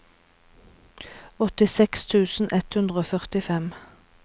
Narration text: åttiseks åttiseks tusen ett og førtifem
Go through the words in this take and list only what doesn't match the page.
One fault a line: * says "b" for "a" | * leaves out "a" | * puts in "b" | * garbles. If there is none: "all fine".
* leaves out "åttiseks"
* puts in "hundre"